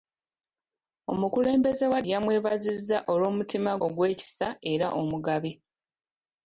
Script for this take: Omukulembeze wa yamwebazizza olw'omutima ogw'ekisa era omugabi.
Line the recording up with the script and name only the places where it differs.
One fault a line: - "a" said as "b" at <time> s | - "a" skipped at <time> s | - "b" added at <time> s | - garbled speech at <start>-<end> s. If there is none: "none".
none